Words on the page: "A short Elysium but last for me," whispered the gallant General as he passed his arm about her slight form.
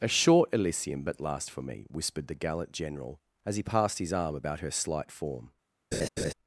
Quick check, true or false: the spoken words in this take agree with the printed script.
true